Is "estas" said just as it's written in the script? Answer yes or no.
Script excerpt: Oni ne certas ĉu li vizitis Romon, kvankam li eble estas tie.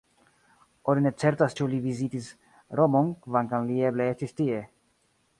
no